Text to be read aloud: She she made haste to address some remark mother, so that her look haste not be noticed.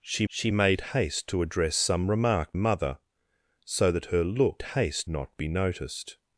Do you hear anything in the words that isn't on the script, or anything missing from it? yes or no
no